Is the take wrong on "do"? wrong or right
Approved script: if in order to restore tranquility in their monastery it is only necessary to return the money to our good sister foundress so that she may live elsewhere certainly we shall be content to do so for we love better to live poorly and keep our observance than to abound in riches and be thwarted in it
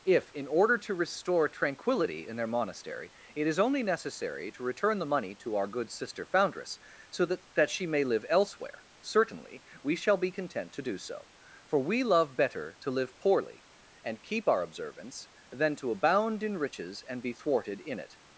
right